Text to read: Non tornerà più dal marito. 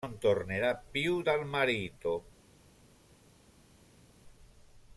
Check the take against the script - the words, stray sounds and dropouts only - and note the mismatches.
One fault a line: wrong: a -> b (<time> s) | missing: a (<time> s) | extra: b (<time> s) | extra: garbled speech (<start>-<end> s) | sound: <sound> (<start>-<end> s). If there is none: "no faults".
no faults